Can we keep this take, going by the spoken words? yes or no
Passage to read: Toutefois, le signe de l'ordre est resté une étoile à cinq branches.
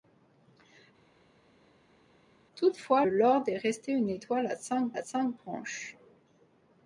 no